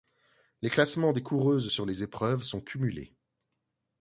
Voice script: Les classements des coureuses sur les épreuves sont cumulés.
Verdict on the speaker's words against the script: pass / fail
pass